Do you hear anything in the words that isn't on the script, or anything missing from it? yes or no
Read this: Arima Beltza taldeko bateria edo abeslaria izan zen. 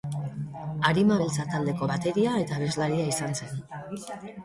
yes